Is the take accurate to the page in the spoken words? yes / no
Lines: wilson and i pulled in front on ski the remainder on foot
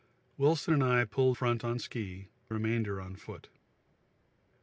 no